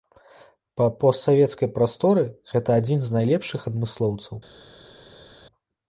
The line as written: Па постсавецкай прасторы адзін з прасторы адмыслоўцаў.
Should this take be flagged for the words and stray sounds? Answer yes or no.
yes